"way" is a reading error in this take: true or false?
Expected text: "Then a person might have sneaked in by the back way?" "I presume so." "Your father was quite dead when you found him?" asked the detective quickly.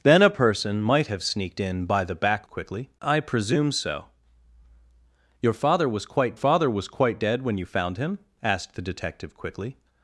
true